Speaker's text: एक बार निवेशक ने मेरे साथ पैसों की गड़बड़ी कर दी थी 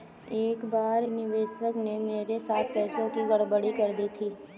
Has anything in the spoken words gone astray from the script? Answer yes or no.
no